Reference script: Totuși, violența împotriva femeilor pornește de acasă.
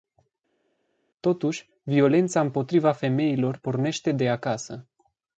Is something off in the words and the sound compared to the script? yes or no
no